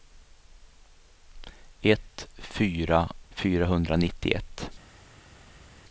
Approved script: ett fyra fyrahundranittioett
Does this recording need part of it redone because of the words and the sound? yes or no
no